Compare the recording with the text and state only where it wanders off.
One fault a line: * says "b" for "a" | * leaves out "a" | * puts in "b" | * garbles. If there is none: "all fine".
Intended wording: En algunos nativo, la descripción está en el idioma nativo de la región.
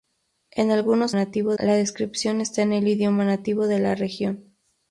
all fine